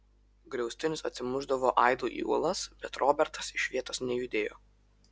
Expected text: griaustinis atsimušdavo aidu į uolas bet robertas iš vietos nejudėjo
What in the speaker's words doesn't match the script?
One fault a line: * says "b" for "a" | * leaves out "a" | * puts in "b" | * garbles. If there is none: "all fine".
all fine